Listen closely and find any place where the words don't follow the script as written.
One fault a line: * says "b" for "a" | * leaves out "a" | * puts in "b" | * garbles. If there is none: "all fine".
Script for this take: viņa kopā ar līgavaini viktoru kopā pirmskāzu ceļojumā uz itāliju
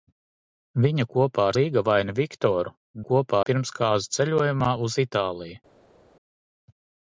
all fine